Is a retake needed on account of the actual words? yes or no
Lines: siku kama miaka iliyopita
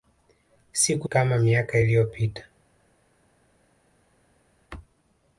no